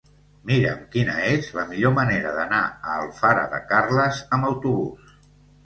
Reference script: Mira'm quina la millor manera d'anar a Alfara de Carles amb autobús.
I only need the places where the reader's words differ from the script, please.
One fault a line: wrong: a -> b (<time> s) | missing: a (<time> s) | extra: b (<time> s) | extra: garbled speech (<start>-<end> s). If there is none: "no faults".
extra: és (1.3 s)